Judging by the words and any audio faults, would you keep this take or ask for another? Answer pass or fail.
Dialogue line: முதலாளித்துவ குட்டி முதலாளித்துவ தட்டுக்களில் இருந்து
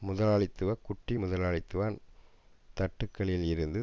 pass